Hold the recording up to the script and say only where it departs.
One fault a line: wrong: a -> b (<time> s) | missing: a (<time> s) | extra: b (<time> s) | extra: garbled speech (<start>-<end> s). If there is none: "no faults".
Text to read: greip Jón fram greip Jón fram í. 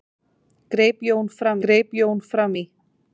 no faults